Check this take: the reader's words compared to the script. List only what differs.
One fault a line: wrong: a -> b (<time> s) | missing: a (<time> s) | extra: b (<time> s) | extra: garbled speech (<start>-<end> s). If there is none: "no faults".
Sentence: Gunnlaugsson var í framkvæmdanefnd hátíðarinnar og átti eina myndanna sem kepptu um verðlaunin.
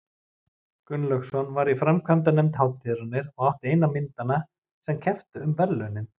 no faults